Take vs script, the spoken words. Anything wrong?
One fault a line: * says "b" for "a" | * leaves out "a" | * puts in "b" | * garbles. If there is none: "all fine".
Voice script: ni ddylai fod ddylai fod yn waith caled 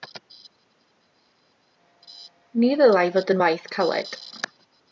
* leaves out "ddylai fod"